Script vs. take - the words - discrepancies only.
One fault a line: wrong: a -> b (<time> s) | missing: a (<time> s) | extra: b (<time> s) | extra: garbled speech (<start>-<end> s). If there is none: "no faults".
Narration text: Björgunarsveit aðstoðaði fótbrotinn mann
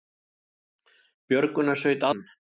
missing: aðstoðaði fótbrotinn (2.1 s)